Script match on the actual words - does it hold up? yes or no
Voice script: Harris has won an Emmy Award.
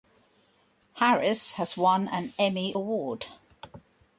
yes